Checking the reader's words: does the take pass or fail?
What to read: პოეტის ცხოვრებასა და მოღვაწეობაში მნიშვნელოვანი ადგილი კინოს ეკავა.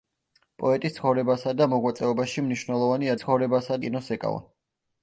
fail